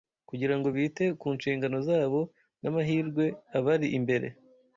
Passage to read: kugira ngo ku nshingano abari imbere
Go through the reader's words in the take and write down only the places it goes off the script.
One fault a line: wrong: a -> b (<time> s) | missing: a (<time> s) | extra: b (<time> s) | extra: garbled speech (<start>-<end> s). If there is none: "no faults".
extra: bite (0.8 s)
extra: zabo n'amahirwe (1.9 s)